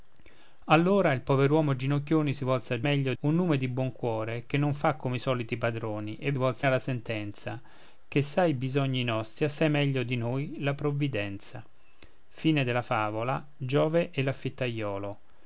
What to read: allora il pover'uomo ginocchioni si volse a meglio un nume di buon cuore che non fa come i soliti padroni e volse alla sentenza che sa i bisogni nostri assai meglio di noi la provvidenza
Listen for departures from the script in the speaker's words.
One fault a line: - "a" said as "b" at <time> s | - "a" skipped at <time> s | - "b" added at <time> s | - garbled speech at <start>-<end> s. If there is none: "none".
none